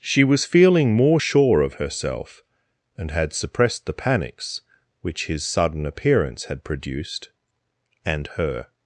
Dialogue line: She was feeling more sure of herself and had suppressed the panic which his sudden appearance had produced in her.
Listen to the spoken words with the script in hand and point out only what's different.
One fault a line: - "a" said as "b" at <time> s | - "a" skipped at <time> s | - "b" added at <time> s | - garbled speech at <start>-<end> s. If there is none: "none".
- "panic" said as "panics" at 3.9 s
- "in" said as "and" at 8.0 s